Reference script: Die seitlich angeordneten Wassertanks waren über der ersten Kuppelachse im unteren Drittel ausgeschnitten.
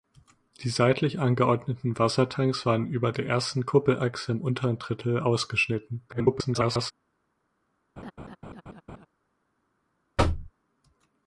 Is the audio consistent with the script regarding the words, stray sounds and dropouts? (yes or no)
no